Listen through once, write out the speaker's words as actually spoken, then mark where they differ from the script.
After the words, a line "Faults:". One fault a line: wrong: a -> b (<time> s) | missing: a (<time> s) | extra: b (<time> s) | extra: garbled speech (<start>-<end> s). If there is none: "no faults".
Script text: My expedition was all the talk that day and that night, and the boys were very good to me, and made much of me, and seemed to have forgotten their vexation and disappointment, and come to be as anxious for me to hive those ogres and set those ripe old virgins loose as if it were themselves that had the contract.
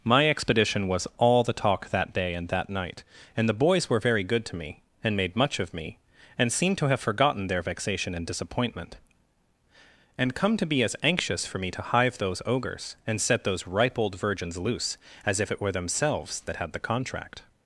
My expedition was all the talk that day and that night, and the boys were very good to me, and made much of me, and seemed to have forgotten their vexation and disappointment, and come to be as anxious for me to hive those ogres and set those ripe old virgins loose as if it were themselves that had the contract.
Faults:
no faults